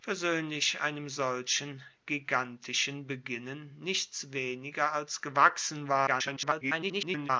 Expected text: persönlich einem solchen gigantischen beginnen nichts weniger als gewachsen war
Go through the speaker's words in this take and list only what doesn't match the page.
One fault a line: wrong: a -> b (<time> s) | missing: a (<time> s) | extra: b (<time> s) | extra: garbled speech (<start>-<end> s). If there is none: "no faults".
extra: garbled speech (6.1-7.3 s)